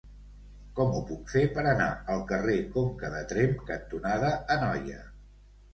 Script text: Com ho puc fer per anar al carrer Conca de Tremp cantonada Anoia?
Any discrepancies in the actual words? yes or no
no